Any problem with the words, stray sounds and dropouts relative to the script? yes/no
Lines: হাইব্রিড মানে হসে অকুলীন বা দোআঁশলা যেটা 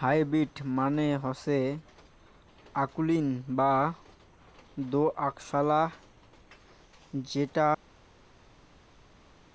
no